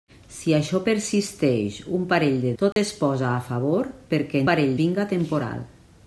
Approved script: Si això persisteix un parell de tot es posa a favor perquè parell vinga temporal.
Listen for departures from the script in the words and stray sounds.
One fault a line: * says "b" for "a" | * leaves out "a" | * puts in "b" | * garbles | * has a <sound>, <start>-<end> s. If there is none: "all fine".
* has a dropout, 2.7-2.8 s